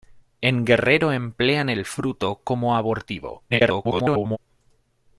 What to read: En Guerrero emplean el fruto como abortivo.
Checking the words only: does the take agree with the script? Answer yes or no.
no